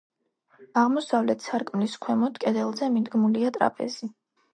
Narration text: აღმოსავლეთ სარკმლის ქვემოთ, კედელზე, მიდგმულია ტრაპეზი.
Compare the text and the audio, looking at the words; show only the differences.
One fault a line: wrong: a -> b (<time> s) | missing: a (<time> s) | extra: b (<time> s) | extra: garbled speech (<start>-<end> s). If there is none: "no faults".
no faults